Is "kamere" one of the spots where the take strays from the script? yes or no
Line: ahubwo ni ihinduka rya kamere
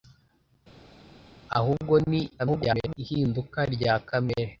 no